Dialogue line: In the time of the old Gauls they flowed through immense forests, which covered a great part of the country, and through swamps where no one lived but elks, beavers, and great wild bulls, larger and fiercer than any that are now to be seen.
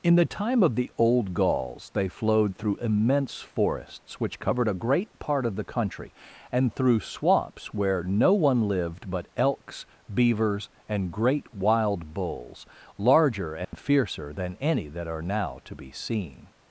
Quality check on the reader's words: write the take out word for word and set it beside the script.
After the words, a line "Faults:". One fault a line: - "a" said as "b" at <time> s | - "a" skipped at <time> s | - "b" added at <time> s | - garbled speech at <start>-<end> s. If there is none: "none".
In the time of the old Gauls they flowed through immense forests, which covered a great part of the country, and through swamps where no one lived but elks, beavers, and great wild bulls, larger and fiercer than any that are now to be seen.
Faults:
none